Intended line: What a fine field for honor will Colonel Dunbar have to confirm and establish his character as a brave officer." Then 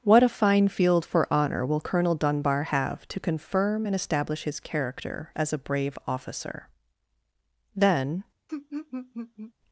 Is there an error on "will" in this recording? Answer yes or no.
no